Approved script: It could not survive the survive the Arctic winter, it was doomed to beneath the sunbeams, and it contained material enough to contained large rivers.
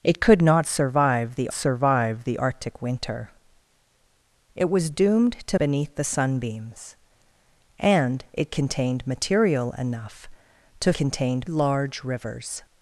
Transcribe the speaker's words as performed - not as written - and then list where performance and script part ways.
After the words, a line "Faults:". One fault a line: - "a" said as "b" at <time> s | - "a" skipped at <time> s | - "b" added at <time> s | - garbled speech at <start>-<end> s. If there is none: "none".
It could not survive the survive the Arctic winter, it was doomed to beneath the sunbeams, and it contained material enough to contained large rivers.
Faults:
none